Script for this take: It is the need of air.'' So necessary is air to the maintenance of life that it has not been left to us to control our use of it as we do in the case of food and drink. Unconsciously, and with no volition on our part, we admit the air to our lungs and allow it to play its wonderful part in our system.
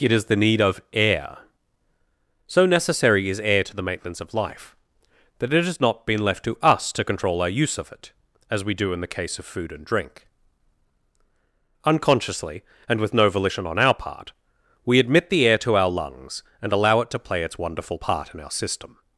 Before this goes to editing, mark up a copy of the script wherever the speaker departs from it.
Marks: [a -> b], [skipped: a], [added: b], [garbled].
It is the need of air.'' So necessary is air to the maintenance of life that it has not been left to us to control our use of it as we do in the case of food and drink. Unconsciously, and with no volition on our part, we admit the air to our lungs and allow it to play its wonderful part in our system.